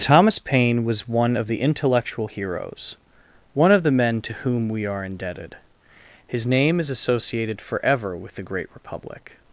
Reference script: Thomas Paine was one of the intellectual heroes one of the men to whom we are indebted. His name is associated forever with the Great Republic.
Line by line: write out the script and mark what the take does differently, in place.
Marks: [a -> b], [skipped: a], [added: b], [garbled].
Thomas Paine was one of the intellectual heroes one of the men to whom we are indebted. His name is associated forever with the Great Republic.